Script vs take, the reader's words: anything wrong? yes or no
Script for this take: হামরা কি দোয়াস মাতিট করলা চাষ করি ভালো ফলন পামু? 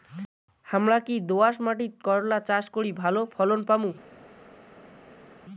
no